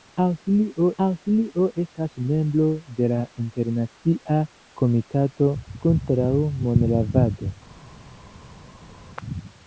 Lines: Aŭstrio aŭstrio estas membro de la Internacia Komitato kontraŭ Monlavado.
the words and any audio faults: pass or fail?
pass